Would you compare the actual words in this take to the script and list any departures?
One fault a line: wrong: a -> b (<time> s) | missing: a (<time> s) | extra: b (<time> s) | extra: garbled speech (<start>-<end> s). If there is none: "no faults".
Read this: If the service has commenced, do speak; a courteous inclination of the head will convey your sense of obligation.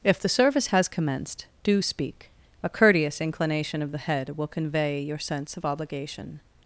no faults